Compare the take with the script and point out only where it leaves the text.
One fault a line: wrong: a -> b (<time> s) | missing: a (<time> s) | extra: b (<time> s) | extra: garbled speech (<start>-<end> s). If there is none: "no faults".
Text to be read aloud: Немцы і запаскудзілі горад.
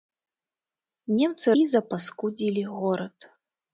no faults